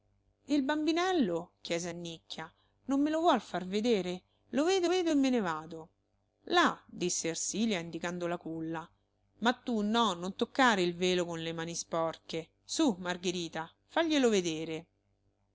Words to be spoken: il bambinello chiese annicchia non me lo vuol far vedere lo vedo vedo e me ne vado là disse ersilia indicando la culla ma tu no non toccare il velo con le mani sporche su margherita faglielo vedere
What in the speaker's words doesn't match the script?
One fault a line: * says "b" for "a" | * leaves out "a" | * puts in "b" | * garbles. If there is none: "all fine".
all fine